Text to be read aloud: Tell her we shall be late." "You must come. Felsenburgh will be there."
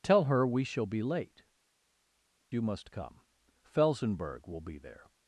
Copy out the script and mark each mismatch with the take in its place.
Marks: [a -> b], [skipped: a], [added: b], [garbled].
Tell her we shall be late." "You must come. Felsenburgh will be there."